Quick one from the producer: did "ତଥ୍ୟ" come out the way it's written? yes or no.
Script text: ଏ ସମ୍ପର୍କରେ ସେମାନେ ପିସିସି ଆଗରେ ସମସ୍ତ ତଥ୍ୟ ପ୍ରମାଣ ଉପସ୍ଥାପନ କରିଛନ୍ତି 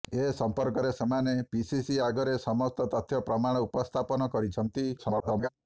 yes